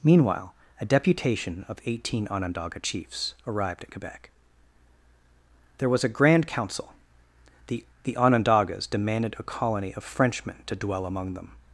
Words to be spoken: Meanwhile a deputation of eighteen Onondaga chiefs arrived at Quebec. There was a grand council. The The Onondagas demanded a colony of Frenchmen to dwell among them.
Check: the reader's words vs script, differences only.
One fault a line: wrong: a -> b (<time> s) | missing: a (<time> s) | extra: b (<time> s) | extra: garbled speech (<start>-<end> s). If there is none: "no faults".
no faults